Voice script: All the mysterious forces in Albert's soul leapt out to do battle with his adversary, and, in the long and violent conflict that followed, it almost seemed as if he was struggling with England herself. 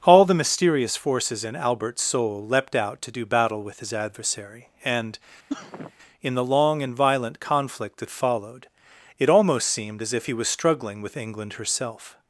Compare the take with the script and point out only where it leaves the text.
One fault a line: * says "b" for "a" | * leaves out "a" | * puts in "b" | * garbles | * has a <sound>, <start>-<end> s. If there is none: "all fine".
* has a sneeze, 5.5-5.9 s